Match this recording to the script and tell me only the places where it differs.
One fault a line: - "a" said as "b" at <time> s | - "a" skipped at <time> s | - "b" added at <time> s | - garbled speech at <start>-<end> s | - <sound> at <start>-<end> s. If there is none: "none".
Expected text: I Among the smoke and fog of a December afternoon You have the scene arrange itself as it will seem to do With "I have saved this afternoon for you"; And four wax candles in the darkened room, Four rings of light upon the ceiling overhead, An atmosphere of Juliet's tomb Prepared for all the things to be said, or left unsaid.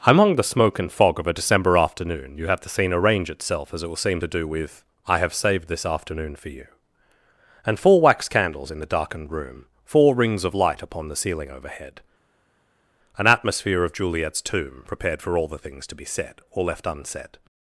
- "I" skipped at 0.0 s